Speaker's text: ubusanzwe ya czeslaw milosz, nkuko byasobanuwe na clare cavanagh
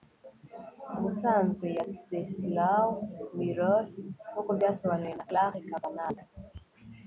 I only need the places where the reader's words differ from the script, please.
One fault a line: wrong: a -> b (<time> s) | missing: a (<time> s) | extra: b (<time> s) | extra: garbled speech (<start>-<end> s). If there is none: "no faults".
no faults